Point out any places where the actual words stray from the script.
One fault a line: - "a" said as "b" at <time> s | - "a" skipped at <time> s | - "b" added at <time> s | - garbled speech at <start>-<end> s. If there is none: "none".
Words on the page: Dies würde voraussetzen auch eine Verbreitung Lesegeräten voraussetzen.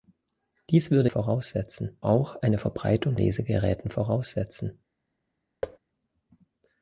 none